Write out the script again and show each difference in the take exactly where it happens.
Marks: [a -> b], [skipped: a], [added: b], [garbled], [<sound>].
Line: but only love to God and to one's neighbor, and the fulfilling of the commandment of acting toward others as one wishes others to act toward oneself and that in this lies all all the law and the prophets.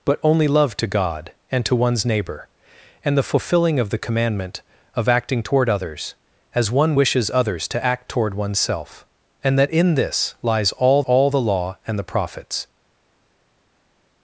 but only love to God and to one's neighbor, and the fulfilling of the commandment of acting toward others as one wishes others to act toward oneself and that in this lies all all the law and the prophets.